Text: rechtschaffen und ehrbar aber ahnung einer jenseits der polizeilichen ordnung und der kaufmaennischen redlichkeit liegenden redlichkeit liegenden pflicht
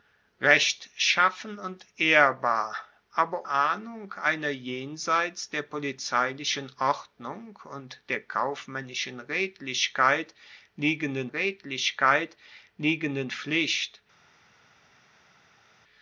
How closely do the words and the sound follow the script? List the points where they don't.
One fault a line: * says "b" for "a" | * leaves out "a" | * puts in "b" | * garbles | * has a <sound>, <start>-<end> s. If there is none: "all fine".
all fine